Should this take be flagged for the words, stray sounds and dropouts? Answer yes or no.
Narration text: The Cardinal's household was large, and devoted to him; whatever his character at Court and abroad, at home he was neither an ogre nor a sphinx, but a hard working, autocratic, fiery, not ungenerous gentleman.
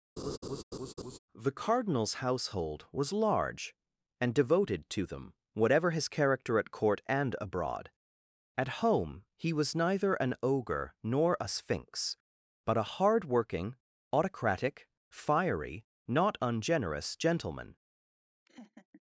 yes